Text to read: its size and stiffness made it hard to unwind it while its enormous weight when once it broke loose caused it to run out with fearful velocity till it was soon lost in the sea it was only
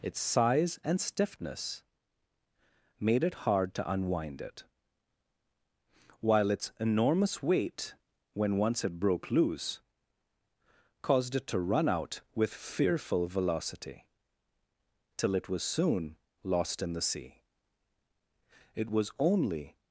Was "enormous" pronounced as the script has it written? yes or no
yes